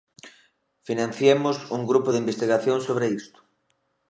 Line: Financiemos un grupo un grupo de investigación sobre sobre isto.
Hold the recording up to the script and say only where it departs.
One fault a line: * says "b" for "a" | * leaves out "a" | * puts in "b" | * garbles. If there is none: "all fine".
* leaves out "un grupo"
* leaves out "sobre"